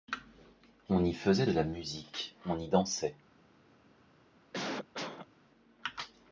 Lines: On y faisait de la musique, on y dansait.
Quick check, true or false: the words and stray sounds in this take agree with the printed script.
false